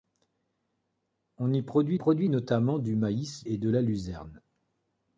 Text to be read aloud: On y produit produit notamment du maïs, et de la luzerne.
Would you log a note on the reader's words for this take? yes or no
no